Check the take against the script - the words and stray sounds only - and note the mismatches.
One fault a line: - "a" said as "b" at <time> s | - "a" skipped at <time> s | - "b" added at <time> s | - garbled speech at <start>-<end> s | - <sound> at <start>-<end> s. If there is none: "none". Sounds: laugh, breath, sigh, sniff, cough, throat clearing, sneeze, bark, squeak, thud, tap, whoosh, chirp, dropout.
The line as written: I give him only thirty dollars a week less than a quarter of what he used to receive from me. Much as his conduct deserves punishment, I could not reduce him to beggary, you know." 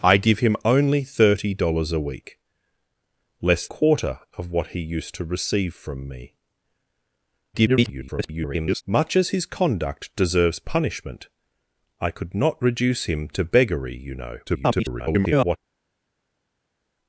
- "than a" skipped at 3.7 s
- garbled speech at 7.5-8.8 s
- garbled speech at 14.5-15.6 s